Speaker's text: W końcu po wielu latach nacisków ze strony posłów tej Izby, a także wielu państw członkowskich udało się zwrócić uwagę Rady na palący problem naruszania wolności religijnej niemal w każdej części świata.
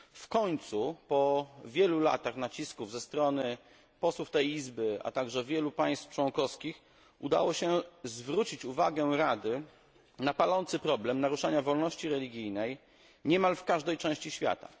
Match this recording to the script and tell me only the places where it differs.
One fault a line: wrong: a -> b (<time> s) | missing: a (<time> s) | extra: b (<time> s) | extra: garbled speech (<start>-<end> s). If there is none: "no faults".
no faults